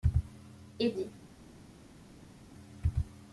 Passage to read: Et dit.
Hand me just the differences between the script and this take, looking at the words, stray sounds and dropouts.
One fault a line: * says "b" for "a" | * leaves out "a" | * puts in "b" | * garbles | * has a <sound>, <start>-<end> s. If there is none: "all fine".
all fine